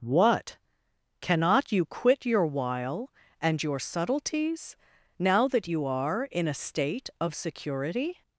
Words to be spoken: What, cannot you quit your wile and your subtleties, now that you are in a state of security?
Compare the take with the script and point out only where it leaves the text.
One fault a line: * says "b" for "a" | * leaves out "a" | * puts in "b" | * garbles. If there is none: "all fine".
all fine